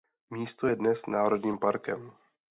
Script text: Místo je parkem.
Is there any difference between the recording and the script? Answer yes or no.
yes